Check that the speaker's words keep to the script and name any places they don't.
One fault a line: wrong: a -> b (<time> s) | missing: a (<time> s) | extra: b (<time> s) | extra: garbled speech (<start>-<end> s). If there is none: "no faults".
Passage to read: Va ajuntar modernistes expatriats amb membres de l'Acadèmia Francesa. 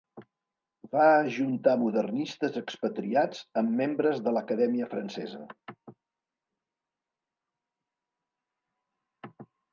no faults